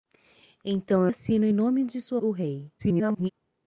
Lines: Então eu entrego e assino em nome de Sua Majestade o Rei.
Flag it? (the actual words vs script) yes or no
yes